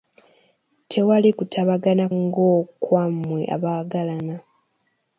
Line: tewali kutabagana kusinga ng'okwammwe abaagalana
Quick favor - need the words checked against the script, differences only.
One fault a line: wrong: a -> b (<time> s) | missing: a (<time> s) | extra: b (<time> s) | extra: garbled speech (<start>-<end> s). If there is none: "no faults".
missing: kusinga (2.0 s)